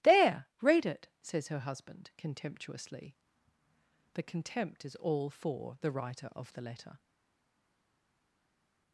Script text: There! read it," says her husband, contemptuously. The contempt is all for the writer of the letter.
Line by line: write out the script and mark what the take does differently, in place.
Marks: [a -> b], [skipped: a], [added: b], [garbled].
There! read it," says her husband, contemptuously. The contempt is all for the writer of the letter.